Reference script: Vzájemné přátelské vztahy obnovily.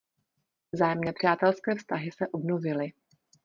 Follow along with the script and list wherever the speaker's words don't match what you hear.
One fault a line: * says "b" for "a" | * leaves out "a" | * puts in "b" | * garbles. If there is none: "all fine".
* puts in "se"